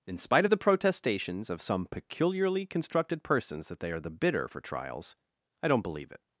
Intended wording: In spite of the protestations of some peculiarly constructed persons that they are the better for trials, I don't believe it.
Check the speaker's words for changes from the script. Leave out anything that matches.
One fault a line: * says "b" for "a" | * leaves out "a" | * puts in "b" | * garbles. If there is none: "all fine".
* says "bitter" for "better"